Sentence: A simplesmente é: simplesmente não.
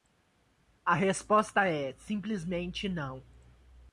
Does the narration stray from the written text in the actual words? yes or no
yes